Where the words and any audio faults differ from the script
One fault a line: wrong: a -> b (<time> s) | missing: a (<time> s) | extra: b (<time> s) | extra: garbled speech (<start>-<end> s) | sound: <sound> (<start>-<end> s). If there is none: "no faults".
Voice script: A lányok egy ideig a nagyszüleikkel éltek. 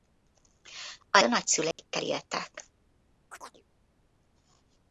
missing: lányok egy ideig (1.2 s)
sound: dropout (1.7-1.8 s)
sound: chirp (3.3-3.6 s)